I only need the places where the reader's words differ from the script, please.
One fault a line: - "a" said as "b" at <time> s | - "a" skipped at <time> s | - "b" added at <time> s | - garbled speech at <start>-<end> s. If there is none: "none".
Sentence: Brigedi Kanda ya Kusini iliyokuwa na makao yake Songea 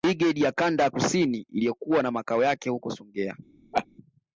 - "ya" added at 0.4 s
- "huko" added at 2.7 s